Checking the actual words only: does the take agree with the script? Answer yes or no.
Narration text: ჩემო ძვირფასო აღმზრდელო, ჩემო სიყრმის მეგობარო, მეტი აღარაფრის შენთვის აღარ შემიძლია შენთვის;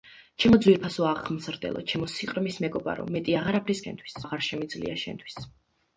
yes